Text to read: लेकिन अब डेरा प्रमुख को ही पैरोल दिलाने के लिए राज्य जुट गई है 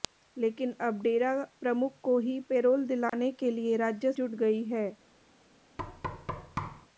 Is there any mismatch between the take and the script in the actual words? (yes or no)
no